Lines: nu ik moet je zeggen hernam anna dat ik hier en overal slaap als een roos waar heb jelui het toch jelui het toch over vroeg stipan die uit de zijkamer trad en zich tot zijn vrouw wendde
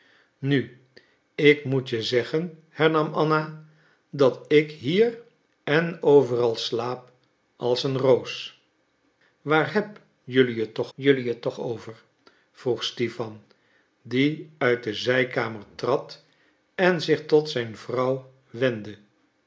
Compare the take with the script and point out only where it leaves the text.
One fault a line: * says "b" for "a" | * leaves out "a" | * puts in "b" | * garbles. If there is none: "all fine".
all fine